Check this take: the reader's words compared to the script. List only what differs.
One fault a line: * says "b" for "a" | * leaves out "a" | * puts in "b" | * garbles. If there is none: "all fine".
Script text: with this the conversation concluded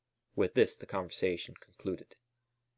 all fine